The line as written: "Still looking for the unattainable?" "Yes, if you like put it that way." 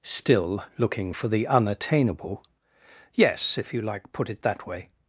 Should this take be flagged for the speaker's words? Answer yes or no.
no